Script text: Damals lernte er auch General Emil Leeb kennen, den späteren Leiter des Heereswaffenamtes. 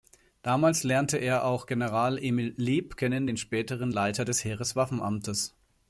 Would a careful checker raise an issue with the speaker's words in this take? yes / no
no